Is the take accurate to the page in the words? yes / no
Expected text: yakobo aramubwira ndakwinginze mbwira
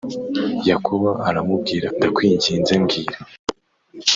yes